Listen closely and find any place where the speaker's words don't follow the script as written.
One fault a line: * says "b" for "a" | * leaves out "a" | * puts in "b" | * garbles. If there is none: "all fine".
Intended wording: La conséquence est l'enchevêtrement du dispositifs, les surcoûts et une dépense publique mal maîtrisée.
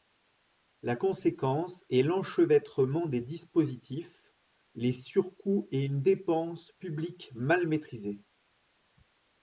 * says "des" for "du"